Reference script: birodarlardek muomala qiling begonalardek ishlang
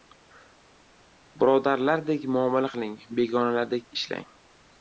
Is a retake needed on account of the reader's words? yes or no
no